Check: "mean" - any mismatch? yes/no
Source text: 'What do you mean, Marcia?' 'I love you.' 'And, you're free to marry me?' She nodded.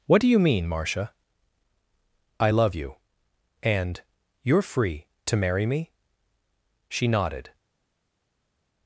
no